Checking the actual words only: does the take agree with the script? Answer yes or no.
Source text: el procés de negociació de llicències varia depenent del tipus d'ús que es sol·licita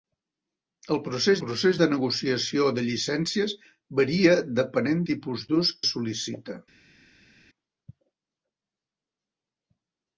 no